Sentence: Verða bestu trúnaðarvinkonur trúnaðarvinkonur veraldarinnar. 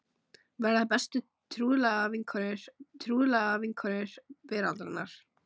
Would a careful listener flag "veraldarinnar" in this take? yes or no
no